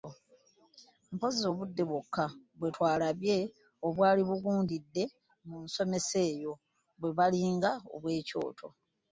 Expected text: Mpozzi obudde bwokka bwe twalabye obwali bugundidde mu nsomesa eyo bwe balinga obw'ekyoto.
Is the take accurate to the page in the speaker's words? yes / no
yes